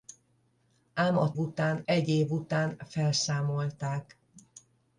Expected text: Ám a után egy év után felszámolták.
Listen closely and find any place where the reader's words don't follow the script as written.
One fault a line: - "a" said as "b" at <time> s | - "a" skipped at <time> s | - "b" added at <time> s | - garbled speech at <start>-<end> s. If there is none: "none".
none